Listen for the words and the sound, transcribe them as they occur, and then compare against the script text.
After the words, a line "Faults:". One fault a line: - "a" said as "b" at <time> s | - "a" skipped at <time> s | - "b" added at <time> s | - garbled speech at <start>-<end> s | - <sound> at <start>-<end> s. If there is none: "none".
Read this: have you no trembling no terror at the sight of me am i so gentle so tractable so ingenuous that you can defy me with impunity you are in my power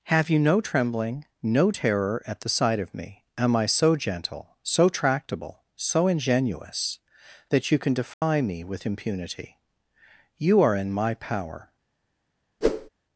have you no trembling no terror at the sight of me am i so gentle so tractable so ingenuous that you can defy me with impunity you are in my power
Faults:
- dropout at 8.1-8.2 s
- whoosh at 12.6-12.9 s